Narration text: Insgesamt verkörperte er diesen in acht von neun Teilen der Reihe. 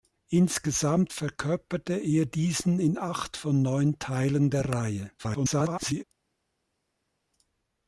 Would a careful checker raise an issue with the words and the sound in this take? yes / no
yes